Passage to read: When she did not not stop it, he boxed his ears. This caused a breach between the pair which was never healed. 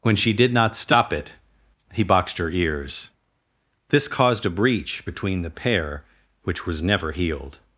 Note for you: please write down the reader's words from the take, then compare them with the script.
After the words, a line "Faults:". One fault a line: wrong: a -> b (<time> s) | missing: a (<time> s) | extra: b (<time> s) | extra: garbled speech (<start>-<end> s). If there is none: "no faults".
When she did not stop it, he boxed her ears. This caused a breach between the pair which was never healed.
Faults:
missing: not (0.8 s)
wrong: his -> her (2.4 s)